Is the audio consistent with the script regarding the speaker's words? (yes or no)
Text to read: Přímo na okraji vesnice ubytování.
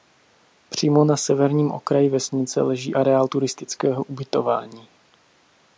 no